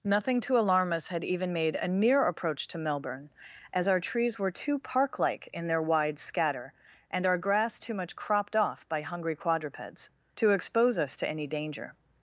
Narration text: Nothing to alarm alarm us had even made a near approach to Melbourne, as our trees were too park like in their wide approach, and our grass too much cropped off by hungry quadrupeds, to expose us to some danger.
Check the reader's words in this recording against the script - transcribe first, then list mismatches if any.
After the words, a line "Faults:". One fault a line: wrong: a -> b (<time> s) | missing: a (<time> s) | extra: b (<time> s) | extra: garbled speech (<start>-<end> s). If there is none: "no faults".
Nothing to alarm us had even made a near approach to Melbourne, as our trees were too park like in their wide scatter, and our grass too much cropped off by hungry quadrupeds, to expose us to any danger.
Faults:
missing: alarm (0.9 s)
wrong: approach -> scatter (6.2 s)
wrong: some -> any (11.3 s)